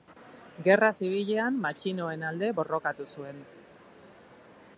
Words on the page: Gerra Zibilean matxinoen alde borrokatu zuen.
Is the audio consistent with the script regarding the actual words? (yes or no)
yes